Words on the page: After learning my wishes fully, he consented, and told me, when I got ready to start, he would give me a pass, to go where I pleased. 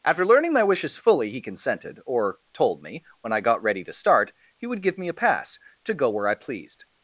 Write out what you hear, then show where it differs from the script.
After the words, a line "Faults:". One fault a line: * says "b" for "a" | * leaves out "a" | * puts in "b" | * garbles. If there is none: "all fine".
After learning my wishes fully, he consented, or told me, when I got ready to start, he would give me a pass, to go where I pleased.
Faults:
* says "or" for "and"